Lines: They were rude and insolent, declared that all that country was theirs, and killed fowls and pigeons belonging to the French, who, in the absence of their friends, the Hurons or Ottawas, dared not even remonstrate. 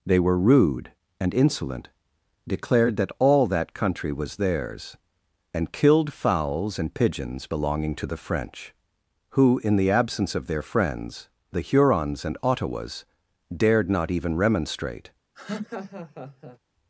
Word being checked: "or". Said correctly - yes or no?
no